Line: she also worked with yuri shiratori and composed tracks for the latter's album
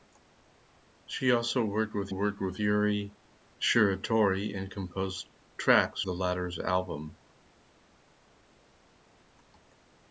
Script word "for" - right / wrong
wrong